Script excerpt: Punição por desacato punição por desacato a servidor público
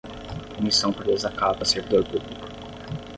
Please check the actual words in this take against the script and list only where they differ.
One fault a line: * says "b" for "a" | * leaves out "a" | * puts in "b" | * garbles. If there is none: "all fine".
* leaves out "punição por desacato"